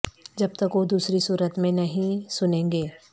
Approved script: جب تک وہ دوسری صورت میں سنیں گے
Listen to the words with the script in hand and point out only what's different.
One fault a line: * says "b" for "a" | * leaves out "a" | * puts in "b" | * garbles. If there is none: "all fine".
* puts in "نہیں"